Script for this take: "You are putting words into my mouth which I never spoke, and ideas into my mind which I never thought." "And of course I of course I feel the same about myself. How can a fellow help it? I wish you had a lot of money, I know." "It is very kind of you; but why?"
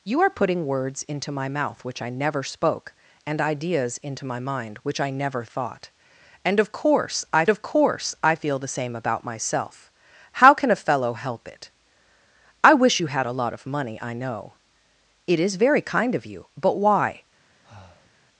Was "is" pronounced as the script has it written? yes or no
yes